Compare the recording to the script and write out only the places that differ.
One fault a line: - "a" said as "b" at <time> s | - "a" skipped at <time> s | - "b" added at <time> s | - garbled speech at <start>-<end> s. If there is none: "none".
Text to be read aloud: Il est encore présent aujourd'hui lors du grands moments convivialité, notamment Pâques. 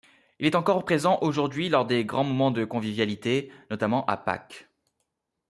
- "du" said as "des" at 1.9 s
- "de" added at 2.5 s
- "à" added at 4.1 s